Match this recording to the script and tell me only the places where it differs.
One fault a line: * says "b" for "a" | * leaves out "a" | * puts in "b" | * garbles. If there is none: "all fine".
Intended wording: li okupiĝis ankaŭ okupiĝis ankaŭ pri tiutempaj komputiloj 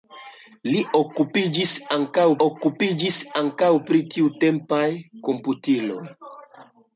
all fine